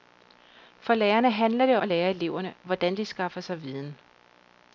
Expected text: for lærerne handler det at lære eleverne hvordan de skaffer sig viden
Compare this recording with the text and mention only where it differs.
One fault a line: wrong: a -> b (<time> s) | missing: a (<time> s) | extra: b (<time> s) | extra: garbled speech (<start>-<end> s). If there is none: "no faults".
no faults